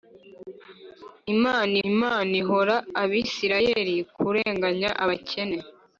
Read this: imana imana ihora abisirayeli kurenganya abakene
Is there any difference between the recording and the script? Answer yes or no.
no